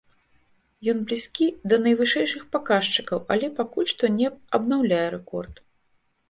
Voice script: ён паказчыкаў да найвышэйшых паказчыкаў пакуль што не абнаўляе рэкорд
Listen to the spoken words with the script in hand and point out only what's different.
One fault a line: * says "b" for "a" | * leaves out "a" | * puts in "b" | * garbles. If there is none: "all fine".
* says "блізкі" for "паказчыкаў"
* puts in "але"